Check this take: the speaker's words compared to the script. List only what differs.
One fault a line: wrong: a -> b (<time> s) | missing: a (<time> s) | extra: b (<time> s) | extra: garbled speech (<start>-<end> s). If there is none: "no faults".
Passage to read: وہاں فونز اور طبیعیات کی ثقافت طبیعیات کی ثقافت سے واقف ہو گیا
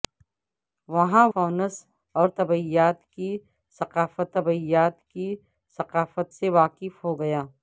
no faults